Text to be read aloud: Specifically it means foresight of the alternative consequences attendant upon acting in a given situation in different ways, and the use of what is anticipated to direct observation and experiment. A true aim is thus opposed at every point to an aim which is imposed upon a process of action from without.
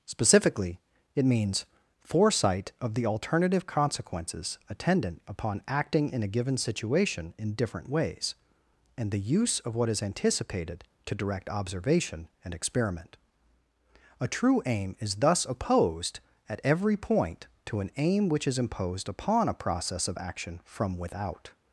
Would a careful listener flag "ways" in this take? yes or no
no